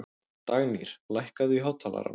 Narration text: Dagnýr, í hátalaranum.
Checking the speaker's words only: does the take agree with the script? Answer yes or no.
no